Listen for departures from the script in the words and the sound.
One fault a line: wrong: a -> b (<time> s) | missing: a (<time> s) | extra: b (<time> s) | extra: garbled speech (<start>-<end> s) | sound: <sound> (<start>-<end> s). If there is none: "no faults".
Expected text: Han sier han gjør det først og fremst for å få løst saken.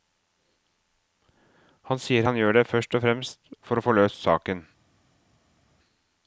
no faults